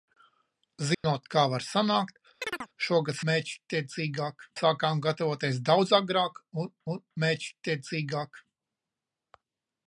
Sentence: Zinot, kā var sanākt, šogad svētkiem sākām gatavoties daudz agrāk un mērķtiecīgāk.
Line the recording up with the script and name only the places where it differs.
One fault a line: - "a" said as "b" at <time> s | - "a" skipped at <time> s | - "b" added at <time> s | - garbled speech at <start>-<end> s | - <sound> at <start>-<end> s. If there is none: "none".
- dropout at 0.9-1.0 s
- chirp at 2.4-2.7 s
- "svētkiem" said as "mērķtiecīgāk" at 3.3 s
- "un" added at 6.9 s